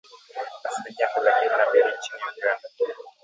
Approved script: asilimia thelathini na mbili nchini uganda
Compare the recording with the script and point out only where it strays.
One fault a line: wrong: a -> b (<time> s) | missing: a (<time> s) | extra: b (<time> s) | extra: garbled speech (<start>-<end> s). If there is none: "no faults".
no faults